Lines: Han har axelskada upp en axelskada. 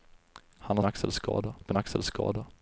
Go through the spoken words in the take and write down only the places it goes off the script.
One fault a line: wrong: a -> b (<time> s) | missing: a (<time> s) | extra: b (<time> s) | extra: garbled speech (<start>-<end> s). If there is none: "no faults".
no faults